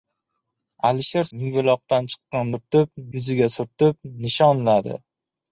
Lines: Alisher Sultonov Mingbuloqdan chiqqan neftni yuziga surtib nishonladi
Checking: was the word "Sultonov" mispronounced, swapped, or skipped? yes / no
yes